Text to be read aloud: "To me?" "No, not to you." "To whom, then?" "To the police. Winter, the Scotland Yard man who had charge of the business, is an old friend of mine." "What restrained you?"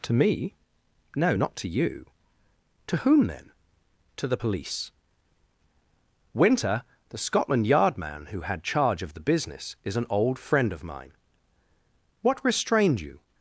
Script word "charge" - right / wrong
right